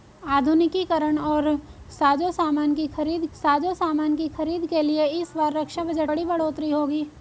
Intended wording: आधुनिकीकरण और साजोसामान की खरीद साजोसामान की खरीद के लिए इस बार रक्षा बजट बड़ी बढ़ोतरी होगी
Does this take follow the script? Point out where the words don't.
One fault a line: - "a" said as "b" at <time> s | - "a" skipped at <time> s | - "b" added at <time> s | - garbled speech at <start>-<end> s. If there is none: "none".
none